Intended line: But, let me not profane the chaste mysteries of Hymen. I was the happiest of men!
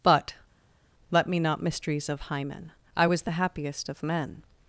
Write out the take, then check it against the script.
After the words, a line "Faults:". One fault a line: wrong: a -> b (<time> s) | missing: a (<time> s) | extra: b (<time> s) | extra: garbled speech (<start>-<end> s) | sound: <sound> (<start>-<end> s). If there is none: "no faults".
But, let me not mysteries of Hymen. I was the happiest of men!
Faults:
missing: profane the chaste (1.6 s)